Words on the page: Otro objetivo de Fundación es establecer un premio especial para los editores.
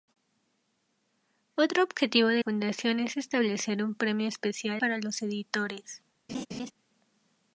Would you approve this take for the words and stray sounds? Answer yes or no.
no